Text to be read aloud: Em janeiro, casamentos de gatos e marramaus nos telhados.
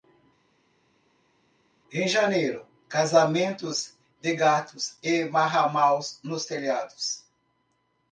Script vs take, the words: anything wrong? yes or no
no